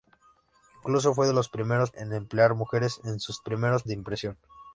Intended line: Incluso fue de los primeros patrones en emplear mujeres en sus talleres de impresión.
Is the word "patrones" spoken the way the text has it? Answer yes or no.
no